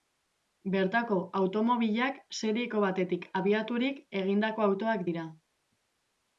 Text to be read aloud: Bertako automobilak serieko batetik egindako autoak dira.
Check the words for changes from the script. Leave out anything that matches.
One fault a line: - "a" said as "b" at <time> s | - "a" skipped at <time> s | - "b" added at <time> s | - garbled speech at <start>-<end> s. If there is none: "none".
- "abiaturik" added at 3.4 s